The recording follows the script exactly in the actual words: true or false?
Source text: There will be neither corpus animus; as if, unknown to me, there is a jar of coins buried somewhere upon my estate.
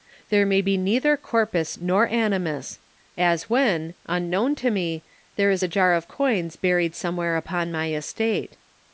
false